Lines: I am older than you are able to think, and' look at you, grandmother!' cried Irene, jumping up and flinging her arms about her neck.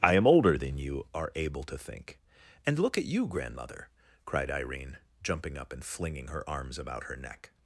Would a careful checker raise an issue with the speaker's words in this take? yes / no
no